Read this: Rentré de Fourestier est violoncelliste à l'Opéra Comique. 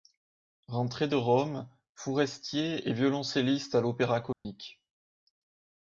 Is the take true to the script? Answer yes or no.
no